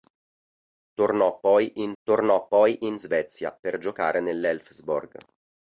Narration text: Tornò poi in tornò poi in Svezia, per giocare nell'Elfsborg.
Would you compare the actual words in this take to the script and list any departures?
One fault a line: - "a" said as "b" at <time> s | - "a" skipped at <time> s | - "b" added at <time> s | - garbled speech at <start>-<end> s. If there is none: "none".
none